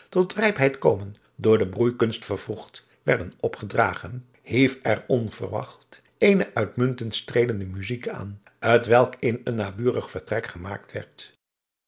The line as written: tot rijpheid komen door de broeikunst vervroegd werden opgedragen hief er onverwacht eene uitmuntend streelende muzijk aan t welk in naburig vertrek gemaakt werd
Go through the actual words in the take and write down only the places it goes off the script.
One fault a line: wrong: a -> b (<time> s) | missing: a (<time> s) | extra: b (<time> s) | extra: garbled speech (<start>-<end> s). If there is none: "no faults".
extra: een (9.4 s)